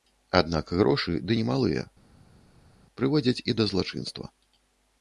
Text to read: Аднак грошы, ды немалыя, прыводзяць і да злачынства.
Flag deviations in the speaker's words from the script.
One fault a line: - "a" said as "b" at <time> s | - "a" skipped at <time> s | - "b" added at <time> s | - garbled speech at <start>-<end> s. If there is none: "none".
none